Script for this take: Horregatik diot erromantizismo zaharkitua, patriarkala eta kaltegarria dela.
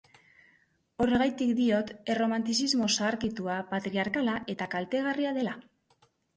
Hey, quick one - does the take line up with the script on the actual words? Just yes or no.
yes